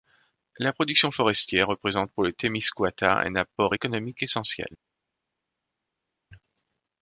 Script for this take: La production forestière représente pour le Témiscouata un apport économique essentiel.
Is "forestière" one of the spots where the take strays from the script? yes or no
no